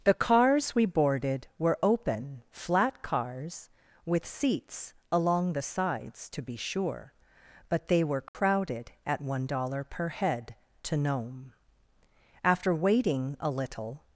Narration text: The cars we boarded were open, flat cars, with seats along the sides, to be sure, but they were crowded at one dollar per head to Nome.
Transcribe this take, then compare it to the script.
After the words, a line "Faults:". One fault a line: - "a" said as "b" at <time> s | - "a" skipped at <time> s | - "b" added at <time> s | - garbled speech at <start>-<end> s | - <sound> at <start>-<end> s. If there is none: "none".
The cars we boarded were open, flat cars, with seats along the sides, to be sure, but they were crowded at one dollar per head to Nome. After waiting a little
Faults:
- dropout at 8.3-8.3 s
- "After waiting a little" added at 12.4 s